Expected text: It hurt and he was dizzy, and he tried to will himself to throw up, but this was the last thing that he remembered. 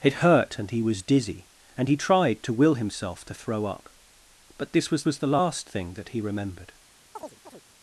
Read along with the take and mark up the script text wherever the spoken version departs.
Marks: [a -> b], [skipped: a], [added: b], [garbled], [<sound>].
It hurt and he was dizzy, and he tried to will himself to throw up, but this was [added: was] the last thing that he remembered. [chirp]